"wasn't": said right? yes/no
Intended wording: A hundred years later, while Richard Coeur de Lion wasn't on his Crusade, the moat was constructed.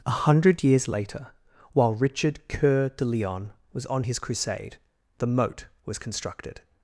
no